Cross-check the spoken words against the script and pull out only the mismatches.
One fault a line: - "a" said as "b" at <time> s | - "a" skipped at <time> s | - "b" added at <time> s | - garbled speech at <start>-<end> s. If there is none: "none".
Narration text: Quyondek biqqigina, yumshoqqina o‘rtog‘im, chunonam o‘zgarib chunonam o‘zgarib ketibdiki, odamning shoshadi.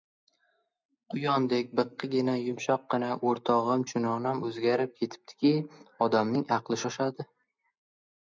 - "chunonam o‘zgarib" skipped at 4.9 s
- "aqli" added at 6.6 s